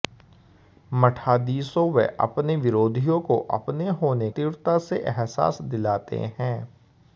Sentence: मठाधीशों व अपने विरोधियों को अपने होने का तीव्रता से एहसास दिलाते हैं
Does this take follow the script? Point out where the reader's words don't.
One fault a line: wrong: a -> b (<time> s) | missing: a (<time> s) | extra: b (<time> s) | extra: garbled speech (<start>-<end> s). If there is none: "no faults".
missing: का (4.3 s)